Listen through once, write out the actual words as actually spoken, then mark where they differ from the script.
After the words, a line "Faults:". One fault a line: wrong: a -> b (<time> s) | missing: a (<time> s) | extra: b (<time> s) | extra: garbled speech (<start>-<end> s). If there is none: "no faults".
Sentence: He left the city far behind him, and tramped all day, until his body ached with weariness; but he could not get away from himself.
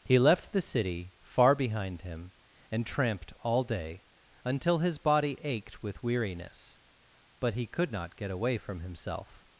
He left the city far behind him, and tramped all day, until his body ached with weariness; but he could not get away from himself.
Faults:
no faults